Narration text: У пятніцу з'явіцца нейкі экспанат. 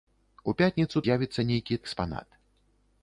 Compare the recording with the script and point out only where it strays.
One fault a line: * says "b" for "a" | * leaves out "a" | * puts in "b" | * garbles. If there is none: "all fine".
all fine